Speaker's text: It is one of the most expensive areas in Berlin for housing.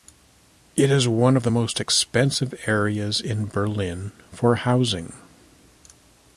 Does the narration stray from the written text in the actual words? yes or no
no